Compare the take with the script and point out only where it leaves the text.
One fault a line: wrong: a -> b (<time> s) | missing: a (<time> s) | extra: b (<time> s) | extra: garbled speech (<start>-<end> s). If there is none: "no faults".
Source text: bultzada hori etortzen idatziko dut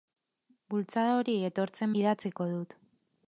no faults